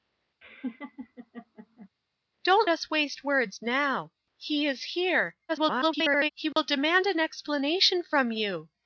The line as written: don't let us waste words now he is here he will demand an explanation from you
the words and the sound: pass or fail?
fail